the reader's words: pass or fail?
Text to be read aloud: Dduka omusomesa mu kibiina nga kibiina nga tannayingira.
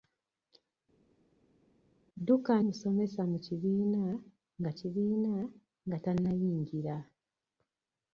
pass